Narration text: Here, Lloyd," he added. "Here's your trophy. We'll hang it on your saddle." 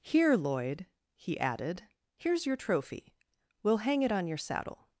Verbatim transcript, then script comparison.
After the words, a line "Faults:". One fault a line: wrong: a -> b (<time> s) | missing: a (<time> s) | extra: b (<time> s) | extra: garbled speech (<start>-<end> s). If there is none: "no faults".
Here, Lloyd," he added. "Here's your trophy. We'll hang it on your saddle."
Faults:
no faults